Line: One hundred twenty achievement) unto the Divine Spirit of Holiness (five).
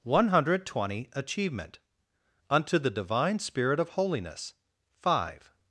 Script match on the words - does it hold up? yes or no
yes